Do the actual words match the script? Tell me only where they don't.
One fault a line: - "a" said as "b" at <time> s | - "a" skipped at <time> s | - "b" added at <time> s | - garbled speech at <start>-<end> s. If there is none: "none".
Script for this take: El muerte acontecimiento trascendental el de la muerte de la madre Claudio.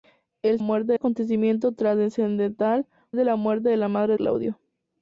none